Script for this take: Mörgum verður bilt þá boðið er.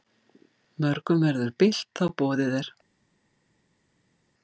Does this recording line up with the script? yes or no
yes